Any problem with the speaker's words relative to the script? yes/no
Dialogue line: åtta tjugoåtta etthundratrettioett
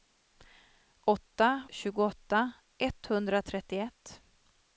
no